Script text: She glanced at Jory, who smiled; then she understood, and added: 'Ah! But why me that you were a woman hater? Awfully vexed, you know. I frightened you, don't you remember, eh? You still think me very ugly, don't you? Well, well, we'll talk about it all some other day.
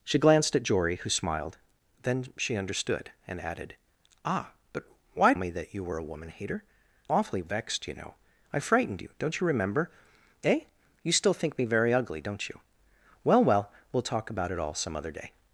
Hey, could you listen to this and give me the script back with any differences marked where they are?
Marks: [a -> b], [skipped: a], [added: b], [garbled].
She glanced at Jory, who smiled; then she understood, and added: 'Ah! But why me that you were a woman hater? Awfully vexed, you know. I frightened you, don't you remember, eh? You still think me very ugly, don't you? Well, well, we'll talk about it all some other day.